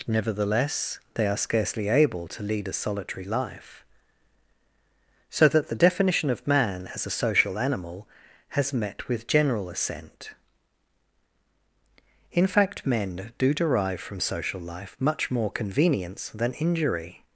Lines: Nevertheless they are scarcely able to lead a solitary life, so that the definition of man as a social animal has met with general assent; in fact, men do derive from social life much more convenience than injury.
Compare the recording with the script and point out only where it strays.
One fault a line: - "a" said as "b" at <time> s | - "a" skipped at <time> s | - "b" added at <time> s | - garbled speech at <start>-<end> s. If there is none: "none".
none